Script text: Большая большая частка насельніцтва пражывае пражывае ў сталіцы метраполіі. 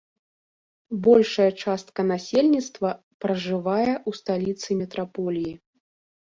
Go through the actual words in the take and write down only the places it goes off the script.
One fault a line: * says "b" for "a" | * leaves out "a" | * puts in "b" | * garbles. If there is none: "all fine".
* leaves out "большая"
* leaves out "пражывае"